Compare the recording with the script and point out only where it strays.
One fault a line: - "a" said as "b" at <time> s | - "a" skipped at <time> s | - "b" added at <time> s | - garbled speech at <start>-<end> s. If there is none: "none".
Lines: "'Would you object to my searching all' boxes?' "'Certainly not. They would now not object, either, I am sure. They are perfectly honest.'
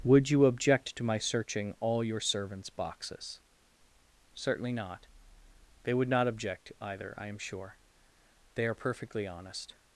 - "your servants" added at 2.0 s
- "now" skipped at 6.1 s